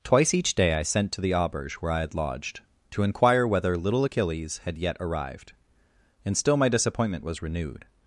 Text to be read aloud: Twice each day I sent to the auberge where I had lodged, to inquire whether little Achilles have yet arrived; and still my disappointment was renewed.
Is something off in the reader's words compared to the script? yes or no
yes